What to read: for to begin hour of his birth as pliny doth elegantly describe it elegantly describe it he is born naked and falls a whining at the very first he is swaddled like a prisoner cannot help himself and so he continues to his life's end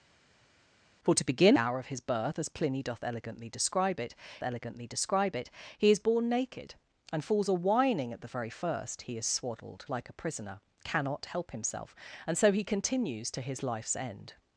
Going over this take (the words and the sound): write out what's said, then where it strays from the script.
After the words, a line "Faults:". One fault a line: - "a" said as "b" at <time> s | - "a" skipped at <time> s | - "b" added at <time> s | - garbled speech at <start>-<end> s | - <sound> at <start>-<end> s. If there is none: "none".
for to begin hour of his birth as pliny doth elegantly describe it elegantly describe it he is born naked and falls a whining at the very first he is swaddled like a prisoner cannot help himself and so he continues to his life's end
Faults:
none